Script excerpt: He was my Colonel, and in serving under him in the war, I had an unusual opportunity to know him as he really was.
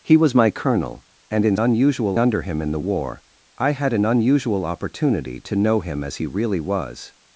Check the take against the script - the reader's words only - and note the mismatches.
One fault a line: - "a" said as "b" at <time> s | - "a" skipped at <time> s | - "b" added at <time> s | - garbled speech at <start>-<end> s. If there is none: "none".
- "serving" said as "unusual" at 1.6 s